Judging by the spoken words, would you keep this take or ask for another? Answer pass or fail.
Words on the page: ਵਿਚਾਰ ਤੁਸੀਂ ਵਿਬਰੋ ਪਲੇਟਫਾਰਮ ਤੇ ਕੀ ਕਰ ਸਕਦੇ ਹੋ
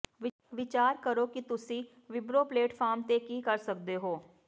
fail